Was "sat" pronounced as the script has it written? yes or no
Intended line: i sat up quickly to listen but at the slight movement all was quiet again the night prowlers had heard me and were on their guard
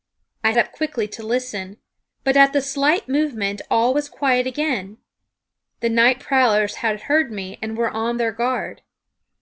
no